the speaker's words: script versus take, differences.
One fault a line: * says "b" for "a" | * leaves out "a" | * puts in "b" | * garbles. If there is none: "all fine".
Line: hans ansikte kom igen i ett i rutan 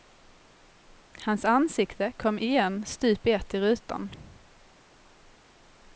* puts in "stup"